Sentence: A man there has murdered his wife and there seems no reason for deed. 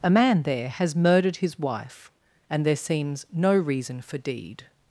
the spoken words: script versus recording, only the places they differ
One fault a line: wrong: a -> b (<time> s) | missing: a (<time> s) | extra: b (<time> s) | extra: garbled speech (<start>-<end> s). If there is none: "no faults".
no faults